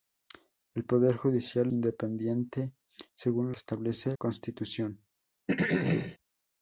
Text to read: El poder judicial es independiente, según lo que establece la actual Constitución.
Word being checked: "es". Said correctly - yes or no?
no